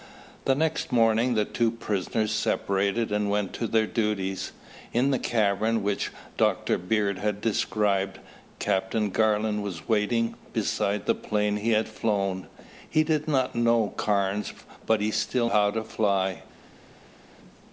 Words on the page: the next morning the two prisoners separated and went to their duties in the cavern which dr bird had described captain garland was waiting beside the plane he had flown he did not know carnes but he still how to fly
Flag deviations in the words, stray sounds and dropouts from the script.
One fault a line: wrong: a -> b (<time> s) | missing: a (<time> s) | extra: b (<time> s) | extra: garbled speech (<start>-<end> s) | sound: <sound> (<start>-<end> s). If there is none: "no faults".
no faults